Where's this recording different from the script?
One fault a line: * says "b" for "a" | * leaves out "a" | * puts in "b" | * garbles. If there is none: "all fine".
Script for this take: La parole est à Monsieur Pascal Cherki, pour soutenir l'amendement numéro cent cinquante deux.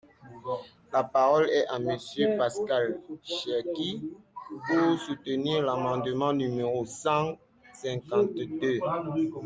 all fine